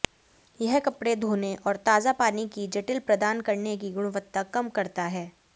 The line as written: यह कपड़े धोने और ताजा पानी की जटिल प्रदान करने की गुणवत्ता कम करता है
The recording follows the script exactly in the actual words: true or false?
true